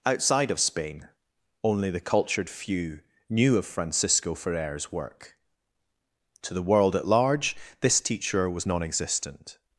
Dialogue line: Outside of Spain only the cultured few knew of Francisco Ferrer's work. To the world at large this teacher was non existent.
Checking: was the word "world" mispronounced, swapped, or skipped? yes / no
no